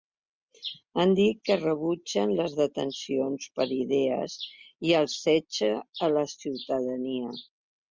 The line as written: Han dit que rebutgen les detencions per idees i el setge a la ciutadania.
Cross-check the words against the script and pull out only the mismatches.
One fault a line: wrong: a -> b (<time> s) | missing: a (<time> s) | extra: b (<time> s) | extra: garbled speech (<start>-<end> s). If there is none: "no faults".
no faults